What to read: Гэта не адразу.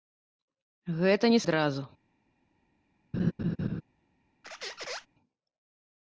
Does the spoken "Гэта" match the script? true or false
true